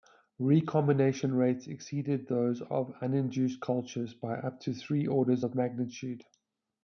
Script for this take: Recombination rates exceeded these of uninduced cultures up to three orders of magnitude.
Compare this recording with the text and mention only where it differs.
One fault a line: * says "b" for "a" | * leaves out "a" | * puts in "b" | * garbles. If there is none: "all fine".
* says "those" for "these"
* puts in "by"